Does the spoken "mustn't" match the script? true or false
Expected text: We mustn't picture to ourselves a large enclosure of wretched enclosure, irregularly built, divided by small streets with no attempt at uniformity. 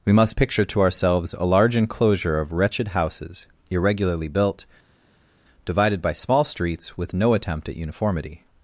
false